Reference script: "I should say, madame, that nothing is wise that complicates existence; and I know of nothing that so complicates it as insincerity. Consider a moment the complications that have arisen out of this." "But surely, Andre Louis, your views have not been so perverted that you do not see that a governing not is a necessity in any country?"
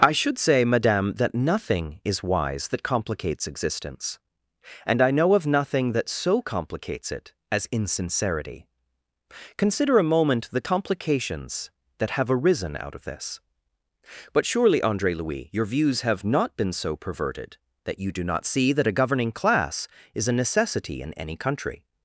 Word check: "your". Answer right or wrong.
right